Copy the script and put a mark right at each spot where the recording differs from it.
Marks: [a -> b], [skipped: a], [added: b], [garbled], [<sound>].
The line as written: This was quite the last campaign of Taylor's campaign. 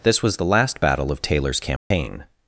This was [skipped: quite] the last [campaign -> battle] of Taylor's campaign. [dropout]